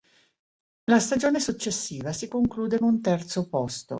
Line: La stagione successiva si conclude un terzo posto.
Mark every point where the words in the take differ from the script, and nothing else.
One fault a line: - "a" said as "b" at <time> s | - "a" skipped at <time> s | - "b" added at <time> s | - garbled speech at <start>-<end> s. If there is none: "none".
none